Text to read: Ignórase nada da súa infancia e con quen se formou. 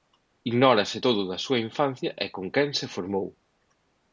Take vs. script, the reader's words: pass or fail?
fail